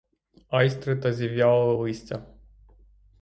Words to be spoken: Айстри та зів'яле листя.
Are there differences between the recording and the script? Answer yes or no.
no